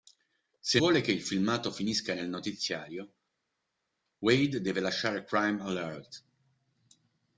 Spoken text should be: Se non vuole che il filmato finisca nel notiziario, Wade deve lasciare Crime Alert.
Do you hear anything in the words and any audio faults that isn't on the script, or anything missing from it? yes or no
yes